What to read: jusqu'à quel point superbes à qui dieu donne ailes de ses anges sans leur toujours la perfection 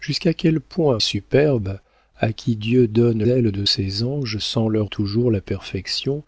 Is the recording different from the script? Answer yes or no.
no